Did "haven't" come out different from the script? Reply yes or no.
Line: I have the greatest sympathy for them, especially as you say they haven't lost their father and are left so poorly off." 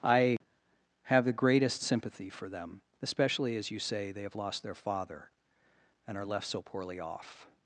yes